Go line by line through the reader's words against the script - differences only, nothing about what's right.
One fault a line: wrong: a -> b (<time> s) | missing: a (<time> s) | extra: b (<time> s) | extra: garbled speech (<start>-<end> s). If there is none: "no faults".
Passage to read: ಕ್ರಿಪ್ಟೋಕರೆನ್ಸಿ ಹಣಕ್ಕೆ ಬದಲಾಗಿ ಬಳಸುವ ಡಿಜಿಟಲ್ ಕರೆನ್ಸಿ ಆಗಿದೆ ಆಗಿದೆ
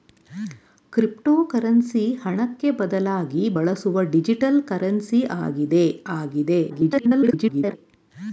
extra: garbled speech (6.7-7.8 s)